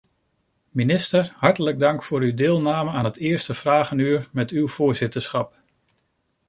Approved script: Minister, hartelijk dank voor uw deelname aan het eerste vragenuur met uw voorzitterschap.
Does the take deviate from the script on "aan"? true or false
false